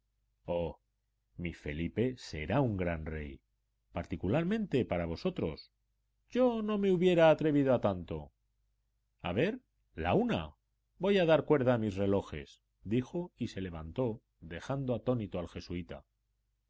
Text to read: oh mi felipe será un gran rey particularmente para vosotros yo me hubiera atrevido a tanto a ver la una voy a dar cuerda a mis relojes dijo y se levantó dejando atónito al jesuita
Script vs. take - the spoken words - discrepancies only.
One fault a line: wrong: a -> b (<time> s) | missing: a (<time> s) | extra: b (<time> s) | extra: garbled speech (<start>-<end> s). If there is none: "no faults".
extra: no (6.6 s)